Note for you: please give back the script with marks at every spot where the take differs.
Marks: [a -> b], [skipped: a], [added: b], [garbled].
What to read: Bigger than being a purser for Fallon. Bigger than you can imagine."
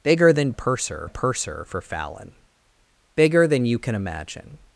Bigger than [being -> purser] a purser for Fallon. Bigger than you can imagine."